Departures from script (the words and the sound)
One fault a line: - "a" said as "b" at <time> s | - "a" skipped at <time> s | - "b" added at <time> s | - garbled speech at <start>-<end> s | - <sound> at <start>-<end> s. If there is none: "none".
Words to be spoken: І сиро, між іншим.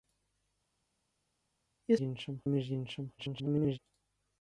- "сиро" said as "іншим" at 2.0 s
- garbled speech at 3.2-3.8 s